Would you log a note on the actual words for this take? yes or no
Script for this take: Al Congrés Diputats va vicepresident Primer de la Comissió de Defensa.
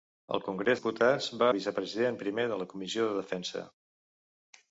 no